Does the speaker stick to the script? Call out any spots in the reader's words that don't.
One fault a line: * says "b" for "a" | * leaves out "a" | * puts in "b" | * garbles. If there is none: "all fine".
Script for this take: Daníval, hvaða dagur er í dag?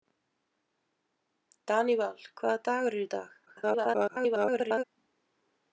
* garbles